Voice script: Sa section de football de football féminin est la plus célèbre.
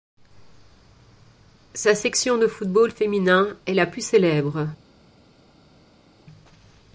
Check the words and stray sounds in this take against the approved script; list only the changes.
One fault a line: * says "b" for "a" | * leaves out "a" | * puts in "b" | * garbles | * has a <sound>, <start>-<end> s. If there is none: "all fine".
* leaves out "de football"